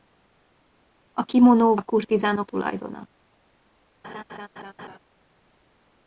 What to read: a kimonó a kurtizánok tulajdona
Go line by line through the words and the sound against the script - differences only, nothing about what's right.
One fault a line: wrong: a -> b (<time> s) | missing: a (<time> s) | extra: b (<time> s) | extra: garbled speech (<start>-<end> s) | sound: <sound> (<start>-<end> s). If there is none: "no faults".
sound: laugh (4.0-5.0 s)